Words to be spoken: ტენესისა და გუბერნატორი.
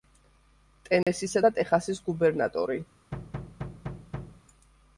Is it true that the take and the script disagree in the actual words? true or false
true